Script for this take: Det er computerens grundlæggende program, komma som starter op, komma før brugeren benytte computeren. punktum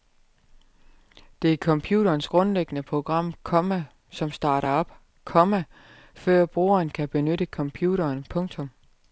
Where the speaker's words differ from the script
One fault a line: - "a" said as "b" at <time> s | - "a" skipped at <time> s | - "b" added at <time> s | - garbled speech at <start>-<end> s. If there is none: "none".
- "kan" added at 6.9 s